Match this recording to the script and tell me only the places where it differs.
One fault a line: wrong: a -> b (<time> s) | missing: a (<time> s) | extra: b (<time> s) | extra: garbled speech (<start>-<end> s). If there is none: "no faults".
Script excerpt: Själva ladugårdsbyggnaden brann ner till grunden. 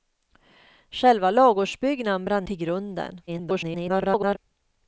missing: ner (2.4 s)
extra: garbled speech (3.3-4.4 s)